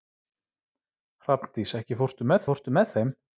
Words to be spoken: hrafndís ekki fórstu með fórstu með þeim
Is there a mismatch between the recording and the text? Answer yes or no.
no